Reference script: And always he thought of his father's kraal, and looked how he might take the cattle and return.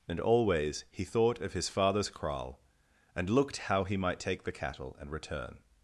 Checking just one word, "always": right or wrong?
right